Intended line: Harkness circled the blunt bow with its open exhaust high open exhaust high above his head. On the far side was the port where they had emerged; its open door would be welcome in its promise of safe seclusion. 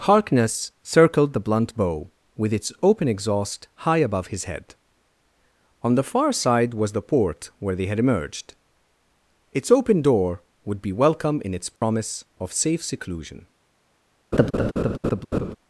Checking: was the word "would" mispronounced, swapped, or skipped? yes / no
no